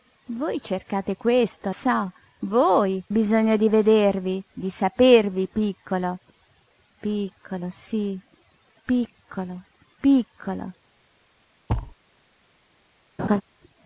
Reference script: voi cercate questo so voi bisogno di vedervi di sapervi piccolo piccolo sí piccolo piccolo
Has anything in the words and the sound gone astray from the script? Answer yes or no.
yes